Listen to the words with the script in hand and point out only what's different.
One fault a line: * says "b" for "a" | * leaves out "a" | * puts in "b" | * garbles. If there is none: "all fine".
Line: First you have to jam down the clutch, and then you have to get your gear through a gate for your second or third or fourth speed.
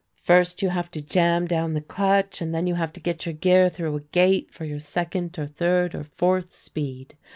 all fine